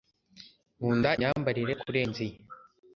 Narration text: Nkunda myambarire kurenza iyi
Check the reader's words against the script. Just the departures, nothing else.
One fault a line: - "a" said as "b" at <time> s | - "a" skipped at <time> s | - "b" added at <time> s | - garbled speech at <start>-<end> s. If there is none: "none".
none